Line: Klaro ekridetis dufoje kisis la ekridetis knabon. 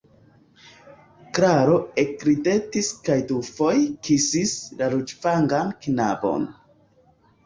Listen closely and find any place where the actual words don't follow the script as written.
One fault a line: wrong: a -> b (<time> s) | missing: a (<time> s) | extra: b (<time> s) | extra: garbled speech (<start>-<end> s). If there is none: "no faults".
extra: kaj (3.1 s)
wrong: ekridetis -> ruĝvangan (5.0 s)